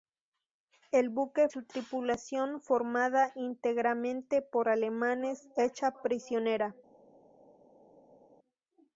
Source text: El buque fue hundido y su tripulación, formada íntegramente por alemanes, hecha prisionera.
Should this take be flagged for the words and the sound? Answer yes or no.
yes